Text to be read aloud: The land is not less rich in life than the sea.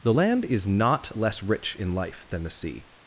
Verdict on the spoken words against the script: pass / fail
pass